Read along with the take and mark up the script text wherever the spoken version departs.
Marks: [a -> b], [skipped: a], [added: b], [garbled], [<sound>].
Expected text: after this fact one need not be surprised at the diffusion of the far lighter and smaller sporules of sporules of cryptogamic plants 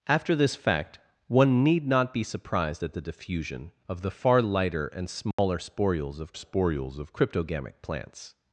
after this fact one need not be surprised at the diffusion of the far lighter and smaller [dropout] sporules of sporules of cryptogamic plants